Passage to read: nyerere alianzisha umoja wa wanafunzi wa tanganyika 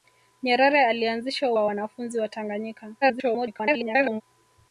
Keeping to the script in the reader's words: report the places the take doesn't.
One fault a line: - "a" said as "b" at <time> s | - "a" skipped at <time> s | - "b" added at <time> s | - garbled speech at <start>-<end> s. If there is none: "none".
- "umoja" skipped at 1.5 s
- garbled speech at 3.0-4.2 s